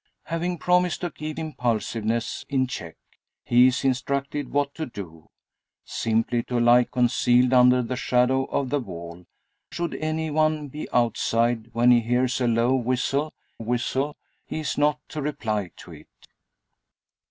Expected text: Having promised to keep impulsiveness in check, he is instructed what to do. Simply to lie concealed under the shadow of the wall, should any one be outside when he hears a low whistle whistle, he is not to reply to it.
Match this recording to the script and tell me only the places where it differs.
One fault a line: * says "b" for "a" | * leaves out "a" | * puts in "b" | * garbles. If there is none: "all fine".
all fine